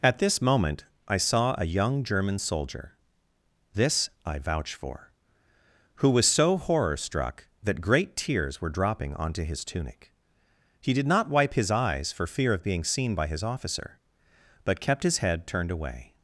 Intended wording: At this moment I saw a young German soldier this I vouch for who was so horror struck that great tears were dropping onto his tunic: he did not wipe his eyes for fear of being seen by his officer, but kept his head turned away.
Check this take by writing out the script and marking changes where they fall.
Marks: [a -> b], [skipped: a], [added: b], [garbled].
At this moment I saw a young German soldier this I vouch for who was so horror struck that great tears were dropping onto his tunic: he did not wipe his eyes for fear of being seen by his officer, but kept his head turned away.